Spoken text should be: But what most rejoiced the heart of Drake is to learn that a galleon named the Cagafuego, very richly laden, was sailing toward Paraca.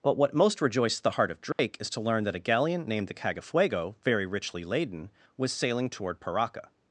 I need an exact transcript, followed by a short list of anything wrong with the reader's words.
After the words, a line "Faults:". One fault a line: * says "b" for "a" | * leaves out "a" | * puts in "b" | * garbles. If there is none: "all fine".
But what most rejoiced the heart of Drake is to learn that a galleon named the Cagafuego, very richly laden, was sailing toward Paraca.
Faults:
all fine